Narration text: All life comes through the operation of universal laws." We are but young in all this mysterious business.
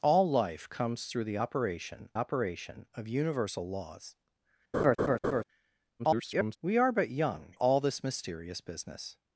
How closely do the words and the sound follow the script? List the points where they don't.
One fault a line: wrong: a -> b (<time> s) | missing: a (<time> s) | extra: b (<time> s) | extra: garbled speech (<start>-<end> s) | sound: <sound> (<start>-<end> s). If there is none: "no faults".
extra: operation (2.1 s)
sound: laugh (4.7-5.4 s)
extra: garbled speech (6.0-6.6 s)
missing: in (7.6 s)